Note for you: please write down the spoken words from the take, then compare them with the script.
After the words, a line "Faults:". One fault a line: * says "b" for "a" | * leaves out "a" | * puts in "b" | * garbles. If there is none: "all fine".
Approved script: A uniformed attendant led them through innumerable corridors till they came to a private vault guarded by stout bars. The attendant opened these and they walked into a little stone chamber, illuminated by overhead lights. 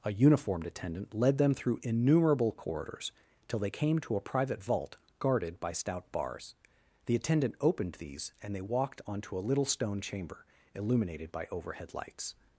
A uniformed attendant led them through innumerable corridors till they came to a private vault guarded by stout bars. The attendant opened these and they walked onto a little stone chamber, illuminated by overhead lights.
Faults:
* says "onto" for "into"